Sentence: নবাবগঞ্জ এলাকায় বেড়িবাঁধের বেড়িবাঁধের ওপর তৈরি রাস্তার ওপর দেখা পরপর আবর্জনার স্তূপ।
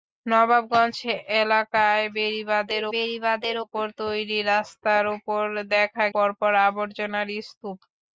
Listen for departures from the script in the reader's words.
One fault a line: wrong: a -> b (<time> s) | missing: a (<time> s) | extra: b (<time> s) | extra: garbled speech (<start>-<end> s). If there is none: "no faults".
no faults